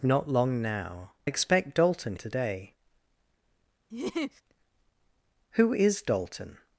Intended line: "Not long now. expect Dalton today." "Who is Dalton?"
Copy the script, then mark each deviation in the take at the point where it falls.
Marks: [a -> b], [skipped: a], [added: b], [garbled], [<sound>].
"Not long now. expect Dalton today." [laugh] "Who is Dalton?"